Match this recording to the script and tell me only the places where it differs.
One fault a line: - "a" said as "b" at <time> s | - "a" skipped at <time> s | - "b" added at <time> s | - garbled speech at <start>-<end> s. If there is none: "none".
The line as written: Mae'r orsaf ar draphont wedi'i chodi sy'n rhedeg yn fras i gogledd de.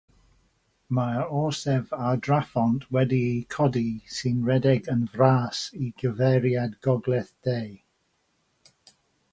- "gyfeiriad" added at 6.0 s